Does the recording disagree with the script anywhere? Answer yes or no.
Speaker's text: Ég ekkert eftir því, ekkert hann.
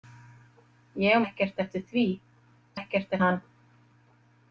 no